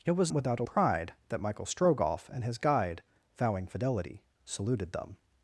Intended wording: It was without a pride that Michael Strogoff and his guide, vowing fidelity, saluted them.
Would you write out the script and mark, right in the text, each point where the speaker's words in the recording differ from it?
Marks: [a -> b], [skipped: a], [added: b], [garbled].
It was without a pride that Michael Strogoff and his guide, vowing fidelity, saluted them.